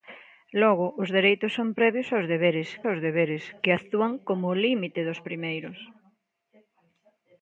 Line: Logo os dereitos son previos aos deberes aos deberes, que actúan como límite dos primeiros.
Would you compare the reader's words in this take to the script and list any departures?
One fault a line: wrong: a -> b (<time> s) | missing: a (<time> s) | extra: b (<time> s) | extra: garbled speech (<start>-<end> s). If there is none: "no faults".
no faults